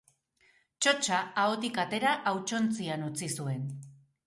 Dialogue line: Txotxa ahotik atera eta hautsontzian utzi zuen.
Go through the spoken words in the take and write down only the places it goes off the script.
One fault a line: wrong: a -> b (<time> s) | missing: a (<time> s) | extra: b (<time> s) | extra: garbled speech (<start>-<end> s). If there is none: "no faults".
missing: eta (2.1 s)